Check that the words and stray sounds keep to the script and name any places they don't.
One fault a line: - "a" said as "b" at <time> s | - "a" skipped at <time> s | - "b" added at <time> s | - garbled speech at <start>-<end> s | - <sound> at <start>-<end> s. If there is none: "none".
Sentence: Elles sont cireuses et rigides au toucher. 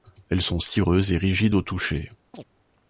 - chirp at 2.3-2.4 s